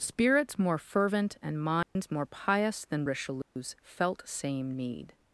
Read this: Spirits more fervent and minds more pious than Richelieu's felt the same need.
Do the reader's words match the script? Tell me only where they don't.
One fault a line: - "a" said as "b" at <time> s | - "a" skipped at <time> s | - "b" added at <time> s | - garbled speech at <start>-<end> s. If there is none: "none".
- "the" skipped at 4.3 s